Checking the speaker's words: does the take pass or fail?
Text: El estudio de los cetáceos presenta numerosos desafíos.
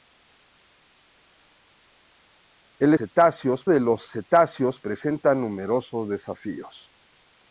fail